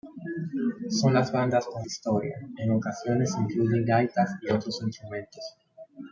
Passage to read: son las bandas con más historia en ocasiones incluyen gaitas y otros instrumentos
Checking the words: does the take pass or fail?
fail